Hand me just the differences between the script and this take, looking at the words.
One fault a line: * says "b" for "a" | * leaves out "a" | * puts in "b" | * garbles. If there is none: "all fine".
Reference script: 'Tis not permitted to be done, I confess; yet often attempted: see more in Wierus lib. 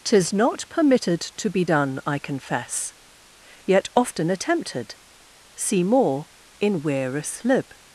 all fine